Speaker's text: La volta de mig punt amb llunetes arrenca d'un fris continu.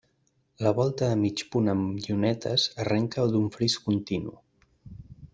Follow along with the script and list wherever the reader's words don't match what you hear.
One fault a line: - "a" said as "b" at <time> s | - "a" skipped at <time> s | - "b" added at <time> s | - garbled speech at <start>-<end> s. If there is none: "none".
none